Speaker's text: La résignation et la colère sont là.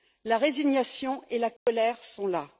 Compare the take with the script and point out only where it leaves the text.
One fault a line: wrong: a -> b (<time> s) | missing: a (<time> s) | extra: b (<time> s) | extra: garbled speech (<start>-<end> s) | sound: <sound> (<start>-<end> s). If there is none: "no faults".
sound: dropout (1.6-1.7 s)